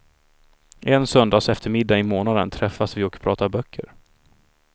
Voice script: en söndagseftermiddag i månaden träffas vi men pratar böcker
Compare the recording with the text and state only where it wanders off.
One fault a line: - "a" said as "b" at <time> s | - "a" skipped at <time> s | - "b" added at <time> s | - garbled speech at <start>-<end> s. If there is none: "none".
- "men" said as "och" at 3.0 s